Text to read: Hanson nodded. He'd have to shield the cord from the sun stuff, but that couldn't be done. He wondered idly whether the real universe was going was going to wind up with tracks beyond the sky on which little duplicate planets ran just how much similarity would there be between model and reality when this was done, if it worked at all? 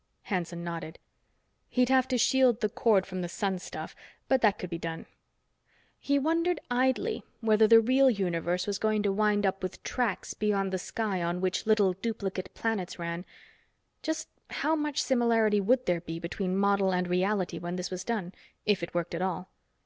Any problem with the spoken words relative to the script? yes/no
yes